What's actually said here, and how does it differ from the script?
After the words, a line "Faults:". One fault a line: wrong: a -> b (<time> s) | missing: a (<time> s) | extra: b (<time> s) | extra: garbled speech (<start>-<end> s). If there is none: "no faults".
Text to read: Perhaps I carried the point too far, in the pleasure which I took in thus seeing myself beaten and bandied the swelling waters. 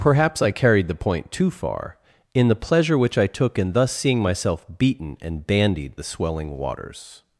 Perhaps I carried the point too far, in the pleasure which I took in thus seeing myself beaten and bandied the swelling waters.
Faults:
no faults